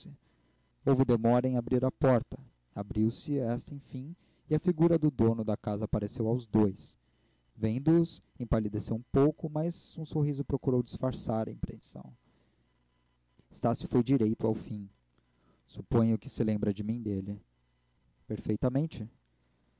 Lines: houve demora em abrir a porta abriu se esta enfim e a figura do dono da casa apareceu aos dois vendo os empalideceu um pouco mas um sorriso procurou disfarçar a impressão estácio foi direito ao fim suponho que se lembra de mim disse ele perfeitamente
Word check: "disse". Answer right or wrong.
wrong